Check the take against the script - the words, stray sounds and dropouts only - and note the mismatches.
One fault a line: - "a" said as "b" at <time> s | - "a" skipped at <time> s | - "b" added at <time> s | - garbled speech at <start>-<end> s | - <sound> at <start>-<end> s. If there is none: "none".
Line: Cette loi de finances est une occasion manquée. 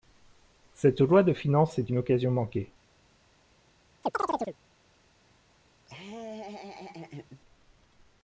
- chirp at 4.0-4.6 s
- laugh at 5.9-7.4 s